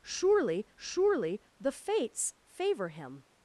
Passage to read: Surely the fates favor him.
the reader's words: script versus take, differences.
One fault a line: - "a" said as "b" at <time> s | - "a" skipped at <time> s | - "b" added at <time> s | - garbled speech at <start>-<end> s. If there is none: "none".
- "surely" added at 0.7 s